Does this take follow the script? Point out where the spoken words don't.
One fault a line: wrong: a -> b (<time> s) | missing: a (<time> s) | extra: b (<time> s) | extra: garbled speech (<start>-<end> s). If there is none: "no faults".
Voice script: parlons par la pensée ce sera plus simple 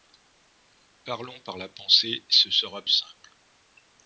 missing: plus (2.8 s)